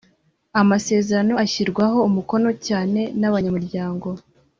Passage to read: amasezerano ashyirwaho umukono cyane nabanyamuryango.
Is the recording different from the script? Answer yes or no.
no